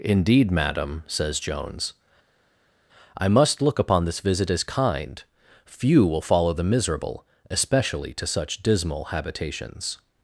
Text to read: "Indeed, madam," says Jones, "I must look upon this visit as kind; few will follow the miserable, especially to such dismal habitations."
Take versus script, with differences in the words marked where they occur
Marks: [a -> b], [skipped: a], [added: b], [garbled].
"Indeed, madam," says Jones, "I must look upon this visit as kind; few will follow the miserable, especially to such dismal habitations."